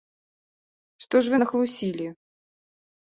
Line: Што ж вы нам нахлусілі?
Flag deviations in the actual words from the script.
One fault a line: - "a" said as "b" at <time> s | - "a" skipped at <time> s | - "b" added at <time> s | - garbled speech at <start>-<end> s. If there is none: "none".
- "нам" skipped at 1.4 s